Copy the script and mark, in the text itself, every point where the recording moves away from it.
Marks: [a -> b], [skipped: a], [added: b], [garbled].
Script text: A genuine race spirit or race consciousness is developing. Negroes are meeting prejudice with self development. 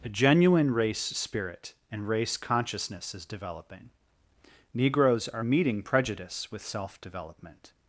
A genuine race spirit [or -> and] race consciousness is developing. Negroes are meeting prejudice with self development.